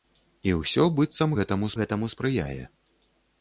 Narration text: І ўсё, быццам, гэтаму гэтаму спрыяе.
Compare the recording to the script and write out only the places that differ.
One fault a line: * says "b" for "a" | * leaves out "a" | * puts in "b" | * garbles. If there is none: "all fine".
all fine